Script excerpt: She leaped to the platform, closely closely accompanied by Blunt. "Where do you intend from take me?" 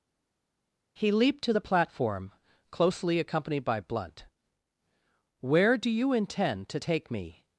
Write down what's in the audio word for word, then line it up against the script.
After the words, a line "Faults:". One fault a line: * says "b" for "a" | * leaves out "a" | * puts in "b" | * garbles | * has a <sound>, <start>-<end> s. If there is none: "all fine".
He leaped to the platform, closely accompanied by Blunt. "Where do you intend to take me?"
Faults:
* says "He" for "She"
* leaves out "closely"
* says "to" for "from"